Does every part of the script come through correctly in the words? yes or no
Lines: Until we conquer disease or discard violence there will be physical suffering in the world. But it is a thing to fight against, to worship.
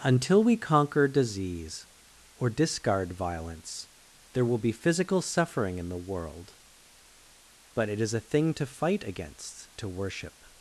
yes